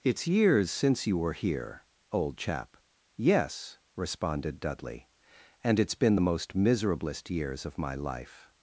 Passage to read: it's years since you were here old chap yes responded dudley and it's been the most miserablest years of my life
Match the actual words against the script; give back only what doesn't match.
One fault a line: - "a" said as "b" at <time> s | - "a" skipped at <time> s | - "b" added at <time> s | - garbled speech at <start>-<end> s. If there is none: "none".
none